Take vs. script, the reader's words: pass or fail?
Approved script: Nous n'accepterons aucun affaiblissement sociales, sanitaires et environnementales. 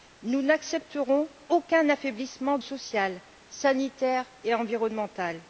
pass